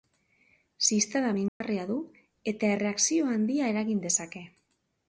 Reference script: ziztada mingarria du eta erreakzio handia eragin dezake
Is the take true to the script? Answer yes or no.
yes